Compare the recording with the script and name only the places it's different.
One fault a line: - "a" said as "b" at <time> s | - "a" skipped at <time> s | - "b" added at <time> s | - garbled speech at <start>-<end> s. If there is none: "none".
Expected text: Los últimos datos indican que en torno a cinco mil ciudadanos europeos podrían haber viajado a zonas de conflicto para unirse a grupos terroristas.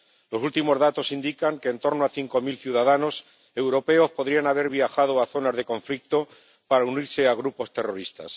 none